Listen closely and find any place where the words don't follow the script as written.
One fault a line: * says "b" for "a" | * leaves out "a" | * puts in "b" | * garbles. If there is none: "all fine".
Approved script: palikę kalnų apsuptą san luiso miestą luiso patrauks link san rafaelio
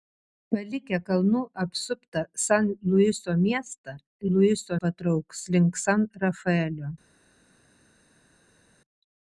all fine